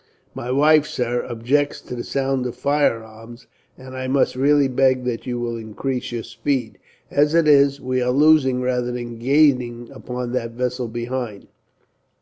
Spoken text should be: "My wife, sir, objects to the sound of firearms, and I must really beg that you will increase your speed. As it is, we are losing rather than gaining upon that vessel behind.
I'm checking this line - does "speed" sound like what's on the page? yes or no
yes